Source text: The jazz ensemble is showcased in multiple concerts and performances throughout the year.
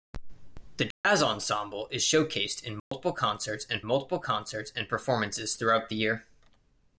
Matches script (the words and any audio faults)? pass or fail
fail